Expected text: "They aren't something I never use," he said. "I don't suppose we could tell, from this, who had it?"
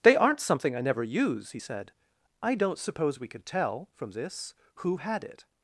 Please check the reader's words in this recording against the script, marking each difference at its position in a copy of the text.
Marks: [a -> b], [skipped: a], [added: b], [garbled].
"They aren't something I never use," he said. "I don't suppose we could tell, from this, who had it?"